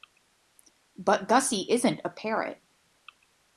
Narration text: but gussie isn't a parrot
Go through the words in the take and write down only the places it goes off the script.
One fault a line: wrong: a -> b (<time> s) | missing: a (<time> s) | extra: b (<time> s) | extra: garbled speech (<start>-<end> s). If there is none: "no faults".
no faults